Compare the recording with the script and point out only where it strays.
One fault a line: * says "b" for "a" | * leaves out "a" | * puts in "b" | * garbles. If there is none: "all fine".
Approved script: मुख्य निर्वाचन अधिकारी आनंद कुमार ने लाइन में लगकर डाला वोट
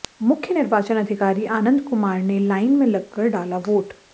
all fine